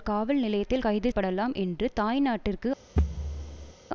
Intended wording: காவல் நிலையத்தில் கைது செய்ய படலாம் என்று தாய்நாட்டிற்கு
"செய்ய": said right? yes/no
no